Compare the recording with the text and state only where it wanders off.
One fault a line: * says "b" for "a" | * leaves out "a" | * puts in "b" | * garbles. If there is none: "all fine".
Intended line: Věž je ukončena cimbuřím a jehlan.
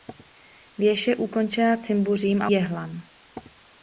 all fine